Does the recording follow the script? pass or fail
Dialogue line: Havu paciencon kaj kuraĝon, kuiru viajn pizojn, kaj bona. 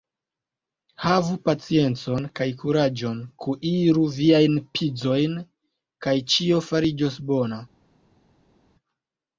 fail